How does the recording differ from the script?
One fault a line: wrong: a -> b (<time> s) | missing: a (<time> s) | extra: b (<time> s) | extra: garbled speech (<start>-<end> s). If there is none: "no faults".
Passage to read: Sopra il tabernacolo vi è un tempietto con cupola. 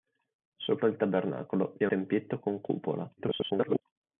missing: un (1.9 s)
extra: garbled speech (3.2-3.8 s)